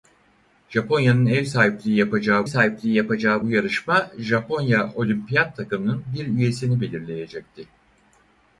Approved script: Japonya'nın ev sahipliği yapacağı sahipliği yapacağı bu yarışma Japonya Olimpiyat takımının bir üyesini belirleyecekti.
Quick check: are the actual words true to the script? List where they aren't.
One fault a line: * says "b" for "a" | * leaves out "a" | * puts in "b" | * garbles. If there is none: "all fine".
all fine